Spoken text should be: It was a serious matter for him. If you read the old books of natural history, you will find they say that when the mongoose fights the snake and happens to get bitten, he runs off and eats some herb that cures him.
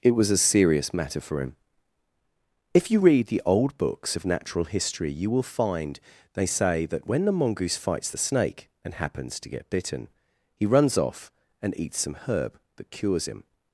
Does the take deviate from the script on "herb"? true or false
false